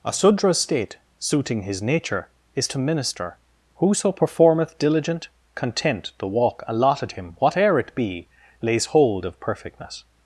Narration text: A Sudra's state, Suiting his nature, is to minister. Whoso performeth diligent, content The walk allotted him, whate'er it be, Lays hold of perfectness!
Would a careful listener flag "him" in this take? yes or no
no